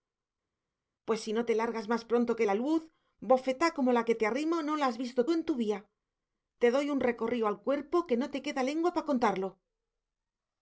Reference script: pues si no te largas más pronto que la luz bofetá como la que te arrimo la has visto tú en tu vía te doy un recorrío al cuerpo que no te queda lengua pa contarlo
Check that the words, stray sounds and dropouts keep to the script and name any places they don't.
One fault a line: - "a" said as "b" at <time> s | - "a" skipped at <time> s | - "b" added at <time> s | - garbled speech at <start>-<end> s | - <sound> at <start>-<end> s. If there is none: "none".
- "no" added at 4.6 s